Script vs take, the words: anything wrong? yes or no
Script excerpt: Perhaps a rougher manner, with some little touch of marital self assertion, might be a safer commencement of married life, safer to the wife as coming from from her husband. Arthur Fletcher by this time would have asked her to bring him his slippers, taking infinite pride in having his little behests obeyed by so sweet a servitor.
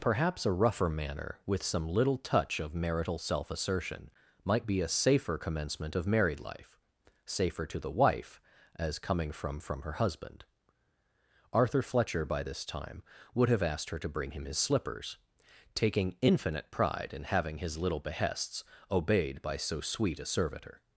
no